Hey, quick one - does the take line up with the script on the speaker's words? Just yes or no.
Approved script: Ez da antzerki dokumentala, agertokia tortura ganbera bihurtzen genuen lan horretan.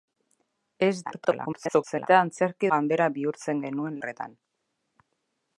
no